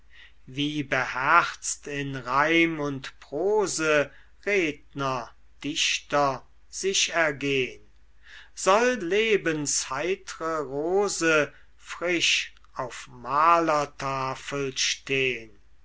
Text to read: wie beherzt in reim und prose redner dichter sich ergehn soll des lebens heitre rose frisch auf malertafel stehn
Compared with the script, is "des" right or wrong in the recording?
wrong